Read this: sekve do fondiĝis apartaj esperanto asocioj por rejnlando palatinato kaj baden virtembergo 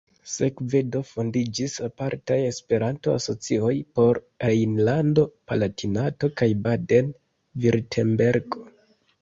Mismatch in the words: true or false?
false